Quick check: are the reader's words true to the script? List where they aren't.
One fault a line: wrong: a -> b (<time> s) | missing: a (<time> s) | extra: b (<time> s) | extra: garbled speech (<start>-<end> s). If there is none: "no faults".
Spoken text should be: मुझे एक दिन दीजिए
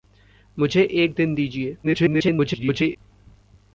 extra: garbled speech (1.8-3.0 s)